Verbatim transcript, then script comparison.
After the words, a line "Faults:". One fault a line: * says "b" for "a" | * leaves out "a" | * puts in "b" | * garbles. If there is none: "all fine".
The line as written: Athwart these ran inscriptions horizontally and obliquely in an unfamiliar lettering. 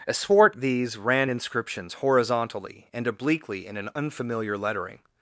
Athwart these ran inscriptions horizontally and obliquely in an unfamiliar lettering.
Faults:
all fine